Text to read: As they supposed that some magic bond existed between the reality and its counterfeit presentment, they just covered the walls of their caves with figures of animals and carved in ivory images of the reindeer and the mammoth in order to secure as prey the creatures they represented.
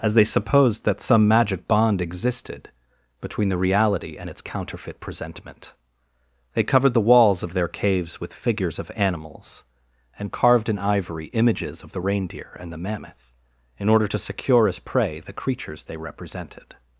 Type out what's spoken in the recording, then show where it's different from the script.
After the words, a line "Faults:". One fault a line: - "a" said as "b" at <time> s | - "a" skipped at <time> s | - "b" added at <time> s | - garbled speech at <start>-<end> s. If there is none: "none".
As they supposed that some magic bond existed between the reality and its counterfeit presentment, they covered the walls of their caves with figures of animals and carved in ivory images of the reindeer and the mammoth in order to secure as prey the creatures they represented.
Faults:
- "just" skipped at 6.6 s